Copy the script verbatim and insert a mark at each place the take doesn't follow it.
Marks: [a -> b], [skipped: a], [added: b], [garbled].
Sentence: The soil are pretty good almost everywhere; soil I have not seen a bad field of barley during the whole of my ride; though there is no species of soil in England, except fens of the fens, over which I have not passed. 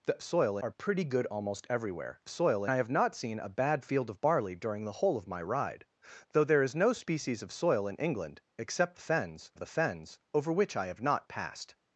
The soil are pretty good almost everywhere; soil I have not seen a bad field of barley during the whole of my ride; though there is no species of soil in England, except fens of the fens, over which I have not passed.